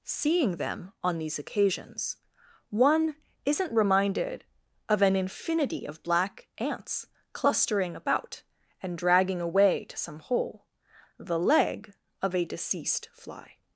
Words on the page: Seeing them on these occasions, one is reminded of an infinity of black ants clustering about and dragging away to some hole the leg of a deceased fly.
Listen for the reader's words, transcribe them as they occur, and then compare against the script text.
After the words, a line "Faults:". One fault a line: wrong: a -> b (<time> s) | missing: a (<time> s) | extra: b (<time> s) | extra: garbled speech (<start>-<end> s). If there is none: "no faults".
Seeing them on these occasions, one isn't reminded of an infinity of black ants clustering about and dragging away to some hole the leg of a deceased fly.
Faults:
wrong: is -> isn't (3.5 s)